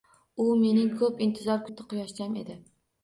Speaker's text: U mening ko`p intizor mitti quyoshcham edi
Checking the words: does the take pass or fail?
pass